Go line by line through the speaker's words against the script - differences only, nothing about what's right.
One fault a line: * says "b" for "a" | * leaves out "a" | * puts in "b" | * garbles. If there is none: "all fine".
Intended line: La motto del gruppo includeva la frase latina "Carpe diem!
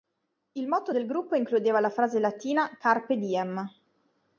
* says "Il" for "La"